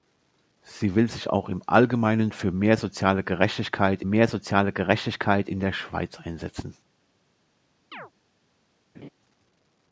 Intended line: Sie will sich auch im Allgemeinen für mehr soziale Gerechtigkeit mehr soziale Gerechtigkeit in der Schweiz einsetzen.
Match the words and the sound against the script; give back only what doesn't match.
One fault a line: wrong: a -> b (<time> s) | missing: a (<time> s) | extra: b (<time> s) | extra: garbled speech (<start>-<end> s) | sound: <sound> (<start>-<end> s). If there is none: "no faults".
sound: chirp (7.9-8.1 s)
sound: laugh (8.9-9.1 s)